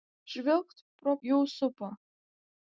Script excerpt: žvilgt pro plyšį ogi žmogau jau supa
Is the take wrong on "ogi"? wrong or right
wrong